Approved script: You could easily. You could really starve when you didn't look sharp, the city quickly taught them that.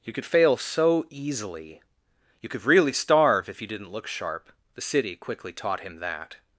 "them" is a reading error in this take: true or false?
true